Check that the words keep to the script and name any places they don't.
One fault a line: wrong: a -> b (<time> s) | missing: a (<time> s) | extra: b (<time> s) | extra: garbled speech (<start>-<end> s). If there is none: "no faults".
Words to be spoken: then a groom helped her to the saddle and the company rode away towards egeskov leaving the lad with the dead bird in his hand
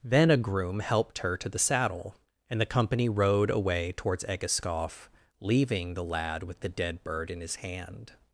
no faults